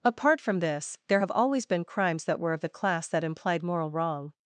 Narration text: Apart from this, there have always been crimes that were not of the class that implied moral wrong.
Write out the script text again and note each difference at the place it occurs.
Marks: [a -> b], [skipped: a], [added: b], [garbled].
Apart from this, there have always been crimes that were [skipped: not] of the class that implied moral wrong.